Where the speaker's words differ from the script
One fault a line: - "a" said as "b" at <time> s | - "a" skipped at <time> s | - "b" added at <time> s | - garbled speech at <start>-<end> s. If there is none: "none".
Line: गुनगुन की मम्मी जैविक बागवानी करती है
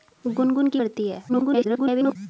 - "मम्मी जैविक बागवानी" skipped at 0.8 s
- garbled speech at 1.3-2.2 s